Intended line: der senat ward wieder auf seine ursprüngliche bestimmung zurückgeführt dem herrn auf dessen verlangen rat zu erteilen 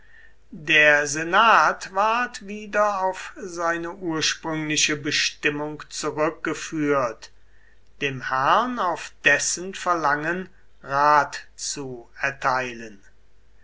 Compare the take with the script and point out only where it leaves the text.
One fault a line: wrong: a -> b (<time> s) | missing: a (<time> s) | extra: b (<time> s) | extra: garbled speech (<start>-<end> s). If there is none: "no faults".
no faults